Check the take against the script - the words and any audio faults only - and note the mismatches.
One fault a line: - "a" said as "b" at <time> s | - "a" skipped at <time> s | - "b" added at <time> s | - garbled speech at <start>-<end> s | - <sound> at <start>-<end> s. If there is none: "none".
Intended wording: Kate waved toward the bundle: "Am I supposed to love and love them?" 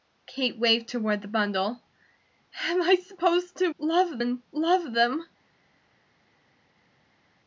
none